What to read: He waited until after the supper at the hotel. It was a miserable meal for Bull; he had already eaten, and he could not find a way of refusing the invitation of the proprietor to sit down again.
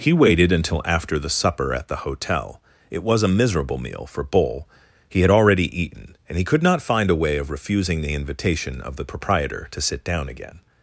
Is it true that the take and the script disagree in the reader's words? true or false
false